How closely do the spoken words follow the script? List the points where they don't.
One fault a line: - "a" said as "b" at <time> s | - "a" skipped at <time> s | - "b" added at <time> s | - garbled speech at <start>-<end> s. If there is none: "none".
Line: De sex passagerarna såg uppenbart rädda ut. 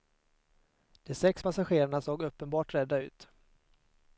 none